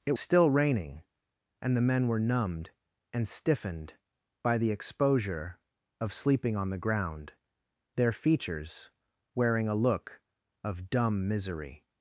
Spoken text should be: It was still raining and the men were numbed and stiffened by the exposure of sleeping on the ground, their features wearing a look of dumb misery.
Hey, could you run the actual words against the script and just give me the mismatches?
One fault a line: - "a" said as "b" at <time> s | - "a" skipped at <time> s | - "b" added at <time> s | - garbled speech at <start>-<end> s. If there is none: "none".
- "was" skipped at 0.1 s